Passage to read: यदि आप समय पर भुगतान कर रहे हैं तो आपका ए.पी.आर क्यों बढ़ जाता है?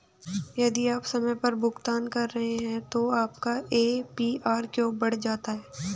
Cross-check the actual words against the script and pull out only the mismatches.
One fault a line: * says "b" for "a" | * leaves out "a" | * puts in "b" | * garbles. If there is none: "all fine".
all fine